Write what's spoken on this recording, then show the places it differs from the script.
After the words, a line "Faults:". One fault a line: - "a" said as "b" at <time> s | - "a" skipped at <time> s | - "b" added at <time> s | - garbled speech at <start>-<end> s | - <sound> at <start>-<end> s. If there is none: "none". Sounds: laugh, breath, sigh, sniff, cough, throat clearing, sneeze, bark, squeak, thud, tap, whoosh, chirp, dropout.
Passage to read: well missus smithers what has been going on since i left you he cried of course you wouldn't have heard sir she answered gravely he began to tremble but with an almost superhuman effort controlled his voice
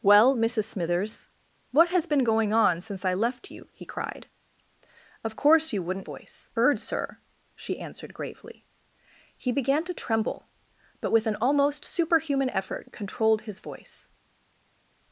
well missus smithers what has been going on since i left you he cried of course you wouldn't voice heard sir she answered gravely he began to tremble but with an almost superhuman effort controlled his voice
Faults:
- "have" said as "voice" at 6.0 s